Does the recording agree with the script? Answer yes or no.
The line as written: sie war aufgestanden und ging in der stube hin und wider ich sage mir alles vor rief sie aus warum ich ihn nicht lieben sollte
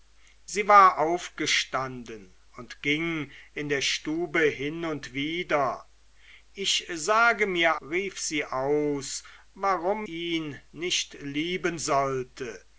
no